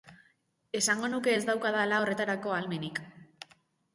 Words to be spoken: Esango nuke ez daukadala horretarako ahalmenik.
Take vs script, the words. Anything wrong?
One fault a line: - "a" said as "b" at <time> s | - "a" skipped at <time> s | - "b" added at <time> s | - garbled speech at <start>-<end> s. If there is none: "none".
none